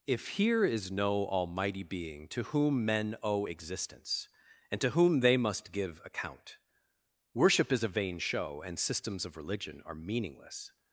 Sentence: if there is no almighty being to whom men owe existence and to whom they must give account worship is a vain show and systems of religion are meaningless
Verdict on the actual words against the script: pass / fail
fail